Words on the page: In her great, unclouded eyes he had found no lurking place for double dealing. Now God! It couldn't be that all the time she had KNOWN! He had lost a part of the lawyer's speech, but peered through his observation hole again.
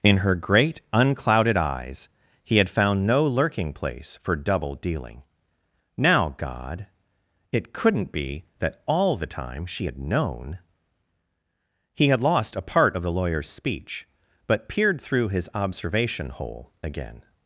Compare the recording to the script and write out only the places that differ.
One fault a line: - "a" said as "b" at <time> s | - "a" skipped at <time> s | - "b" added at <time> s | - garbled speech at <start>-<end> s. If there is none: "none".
none